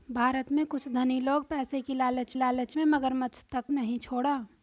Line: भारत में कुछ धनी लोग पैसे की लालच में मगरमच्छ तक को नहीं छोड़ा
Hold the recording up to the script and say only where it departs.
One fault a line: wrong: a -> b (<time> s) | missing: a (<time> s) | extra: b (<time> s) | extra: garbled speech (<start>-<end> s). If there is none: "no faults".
extra: लालच (2.3 s)
missing: को (3.6 s)